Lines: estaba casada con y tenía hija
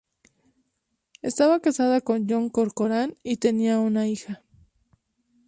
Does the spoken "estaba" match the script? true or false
true